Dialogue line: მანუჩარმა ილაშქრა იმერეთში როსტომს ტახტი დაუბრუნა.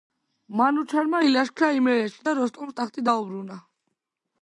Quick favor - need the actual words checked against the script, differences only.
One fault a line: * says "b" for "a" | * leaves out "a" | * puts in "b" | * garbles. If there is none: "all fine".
* puts in "და"